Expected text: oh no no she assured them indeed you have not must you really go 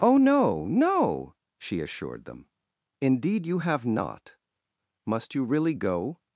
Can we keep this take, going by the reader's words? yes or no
yes